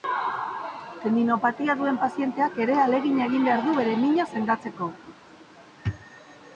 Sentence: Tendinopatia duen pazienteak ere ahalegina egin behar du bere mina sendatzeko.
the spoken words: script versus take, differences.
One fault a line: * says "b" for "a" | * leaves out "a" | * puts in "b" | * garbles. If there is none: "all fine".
all fine